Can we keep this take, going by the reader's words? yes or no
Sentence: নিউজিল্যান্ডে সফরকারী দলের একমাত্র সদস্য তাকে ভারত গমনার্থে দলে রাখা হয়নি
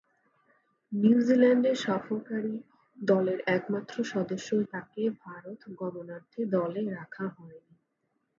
yes